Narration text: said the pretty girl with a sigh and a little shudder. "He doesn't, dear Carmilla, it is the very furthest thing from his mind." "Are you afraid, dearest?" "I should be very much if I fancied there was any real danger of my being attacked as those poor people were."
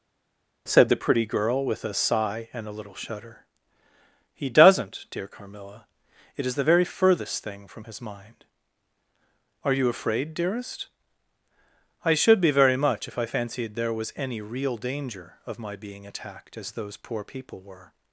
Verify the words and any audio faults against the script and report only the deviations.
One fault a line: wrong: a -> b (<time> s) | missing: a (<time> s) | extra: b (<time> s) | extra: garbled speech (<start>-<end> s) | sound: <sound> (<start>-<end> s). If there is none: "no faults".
no faults